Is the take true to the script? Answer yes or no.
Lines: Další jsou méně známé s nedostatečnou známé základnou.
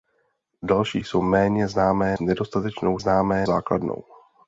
yes